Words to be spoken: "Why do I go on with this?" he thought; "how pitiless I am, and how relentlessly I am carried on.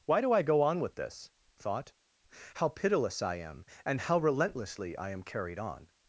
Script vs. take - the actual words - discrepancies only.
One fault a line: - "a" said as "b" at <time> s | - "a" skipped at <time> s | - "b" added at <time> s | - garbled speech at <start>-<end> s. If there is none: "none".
- "he" skipped at 1.3 s